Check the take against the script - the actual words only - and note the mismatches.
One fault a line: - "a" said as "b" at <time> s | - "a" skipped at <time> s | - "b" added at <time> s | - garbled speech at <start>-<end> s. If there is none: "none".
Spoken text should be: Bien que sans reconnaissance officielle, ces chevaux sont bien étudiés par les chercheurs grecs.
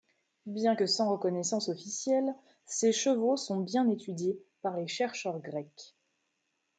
none